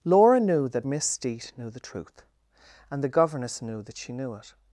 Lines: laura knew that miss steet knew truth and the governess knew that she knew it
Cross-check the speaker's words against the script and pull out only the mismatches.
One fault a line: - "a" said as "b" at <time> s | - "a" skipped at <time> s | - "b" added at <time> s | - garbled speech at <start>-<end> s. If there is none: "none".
- "the" added at 1.7 s